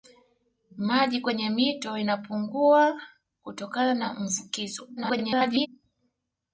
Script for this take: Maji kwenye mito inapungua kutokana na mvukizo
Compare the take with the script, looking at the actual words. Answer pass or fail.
fail